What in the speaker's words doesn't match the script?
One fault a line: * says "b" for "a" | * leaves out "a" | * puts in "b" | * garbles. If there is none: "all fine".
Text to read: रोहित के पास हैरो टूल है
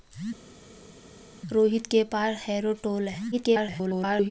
* garbles